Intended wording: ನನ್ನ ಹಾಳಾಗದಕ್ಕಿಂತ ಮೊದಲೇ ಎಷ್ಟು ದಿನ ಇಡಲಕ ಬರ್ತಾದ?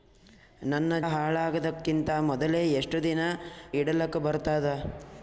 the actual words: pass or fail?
pass